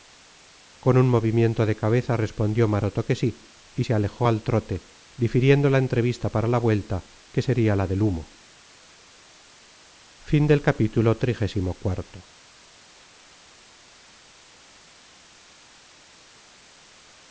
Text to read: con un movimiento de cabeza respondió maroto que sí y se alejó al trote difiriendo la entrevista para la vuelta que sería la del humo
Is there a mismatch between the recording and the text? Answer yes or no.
no